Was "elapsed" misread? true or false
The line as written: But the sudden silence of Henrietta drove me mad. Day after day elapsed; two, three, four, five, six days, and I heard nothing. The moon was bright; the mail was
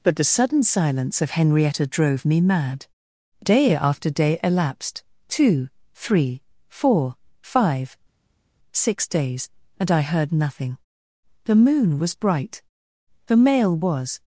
false